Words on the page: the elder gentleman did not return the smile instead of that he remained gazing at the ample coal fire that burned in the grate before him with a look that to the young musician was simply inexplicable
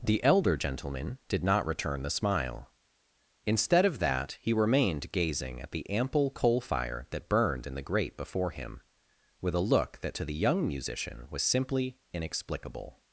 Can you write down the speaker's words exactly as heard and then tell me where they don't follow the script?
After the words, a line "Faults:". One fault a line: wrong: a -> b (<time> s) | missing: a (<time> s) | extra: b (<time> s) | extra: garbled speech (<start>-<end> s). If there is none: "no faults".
the elder gentleman did not return the smile instead of that he remained gazing at the ample coal fire that burned in the grate before him with a look that to the young musician was simply inexplicable
Faults:
no faults